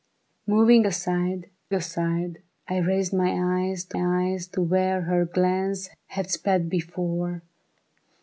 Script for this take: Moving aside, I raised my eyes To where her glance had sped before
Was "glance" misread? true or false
false